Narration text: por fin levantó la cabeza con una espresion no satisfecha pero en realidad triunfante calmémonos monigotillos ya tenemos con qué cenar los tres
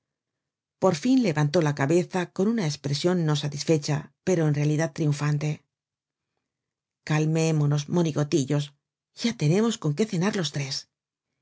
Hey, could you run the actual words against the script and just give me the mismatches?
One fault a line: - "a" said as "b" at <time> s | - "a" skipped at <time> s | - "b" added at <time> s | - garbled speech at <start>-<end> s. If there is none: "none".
none